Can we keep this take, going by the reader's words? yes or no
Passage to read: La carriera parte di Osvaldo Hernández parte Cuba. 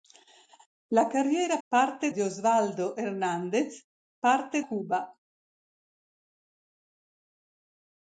yes